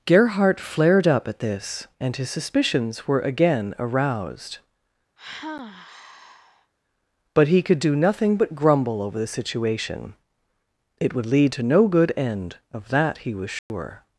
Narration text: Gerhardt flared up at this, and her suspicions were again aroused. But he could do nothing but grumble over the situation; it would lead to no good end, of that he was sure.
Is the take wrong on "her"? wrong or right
wrong